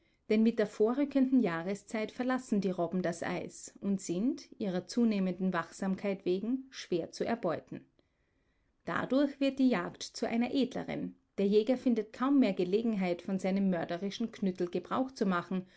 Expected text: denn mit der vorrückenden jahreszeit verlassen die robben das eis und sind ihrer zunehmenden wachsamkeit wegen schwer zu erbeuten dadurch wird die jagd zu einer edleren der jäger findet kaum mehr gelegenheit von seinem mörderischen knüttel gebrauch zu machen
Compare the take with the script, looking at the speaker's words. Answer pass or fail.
pass